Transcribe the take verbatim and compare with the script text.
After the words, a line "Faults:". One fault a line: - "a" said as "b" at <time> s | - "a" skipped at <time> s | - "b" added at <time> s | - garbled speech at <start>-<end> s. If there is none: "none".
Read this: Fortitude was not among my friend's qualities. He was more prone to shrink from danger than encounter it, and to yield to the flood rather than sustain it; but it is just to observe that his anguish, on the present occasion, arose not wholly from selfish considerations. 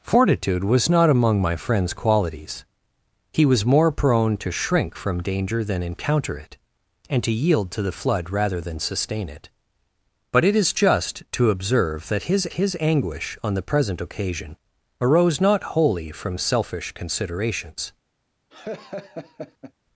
Fortitude was not among my friend's qualities. He was more prone to shrink from danger than encounter it, and to yield to the flood rather than sustain it; but it is just to observe that his his anguish, on the present occasion, arose not wholly from selfish considerations.
Faults:
- "his" added at 12.5 s